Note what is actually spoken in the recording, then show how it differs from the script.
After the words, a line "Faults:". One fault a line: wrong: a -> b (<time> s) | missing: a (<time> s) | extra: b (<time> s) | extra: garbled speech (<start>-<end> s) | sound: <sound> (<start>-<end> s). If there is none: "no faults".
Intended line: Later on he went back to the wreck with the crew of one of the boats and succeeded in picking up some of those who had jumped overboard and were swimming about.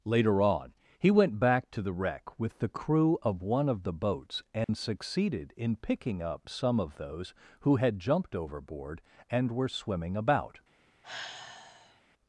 Later on he went back to the wreck with the crew of one of the boats and succeeded in picking up some of those who had jumped overboard and were swimming about.
Faults:
sound: dropout (4.6-4.7 s)
sound: sigh (11.0-12.0 s)